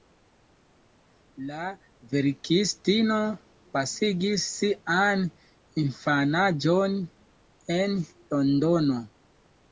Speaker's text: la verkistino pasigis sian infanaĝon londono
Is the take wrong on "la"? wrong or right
right